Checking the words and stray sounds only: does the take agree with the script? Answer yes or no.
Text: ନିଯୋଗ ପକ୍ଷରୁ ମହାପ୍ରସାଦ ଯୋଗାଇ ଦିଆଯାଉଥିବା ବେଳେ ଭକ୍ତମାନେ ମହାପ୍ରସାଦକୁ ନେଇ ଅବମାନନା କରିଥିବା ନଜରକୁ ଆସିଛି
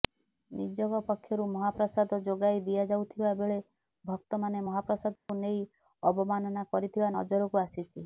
no